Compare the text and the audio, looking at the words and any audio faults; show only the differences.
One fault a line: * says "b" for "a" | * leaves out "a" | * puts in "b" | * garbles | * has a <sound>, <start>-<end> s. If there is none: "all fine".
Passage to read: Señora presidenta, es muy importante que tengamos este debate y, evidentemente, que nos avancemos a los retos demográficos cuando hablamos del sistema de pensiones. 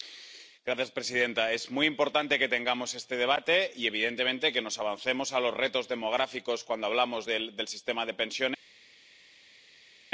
all fine